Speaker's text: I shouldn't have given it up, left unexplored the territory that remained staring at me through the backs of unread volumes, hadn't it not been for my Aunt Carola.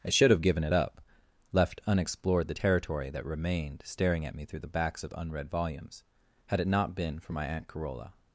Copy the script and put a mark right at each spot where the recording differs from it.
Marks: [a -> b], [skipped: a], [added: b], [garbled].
I [shouldn't -> should] have given it up, left unexplored the territory that remained staring at me through the backs of unread volumes, [hadn't -> had] it not been for my Aunt Carola.